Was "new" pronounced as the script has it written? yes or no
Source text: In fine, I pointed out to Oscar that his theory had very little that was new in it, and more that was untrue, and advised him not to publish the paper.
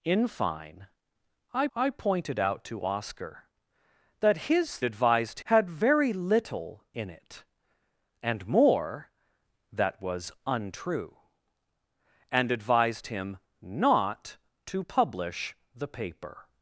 no